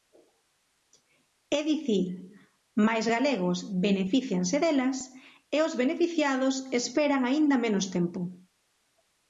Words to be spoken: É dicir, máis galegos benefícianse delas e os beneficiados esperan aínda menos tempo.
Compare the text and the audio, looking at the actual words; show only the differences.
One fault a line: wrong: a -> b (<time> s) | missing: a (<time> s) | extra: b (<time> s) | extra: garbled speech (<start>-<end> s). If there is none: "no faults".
no faults